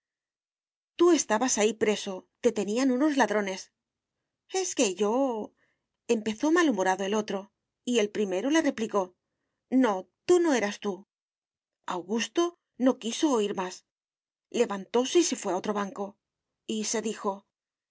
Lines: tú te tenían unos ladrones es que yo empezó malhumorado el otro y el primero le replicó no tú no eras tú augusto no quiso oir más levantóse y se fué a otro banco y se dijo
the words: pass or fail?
fail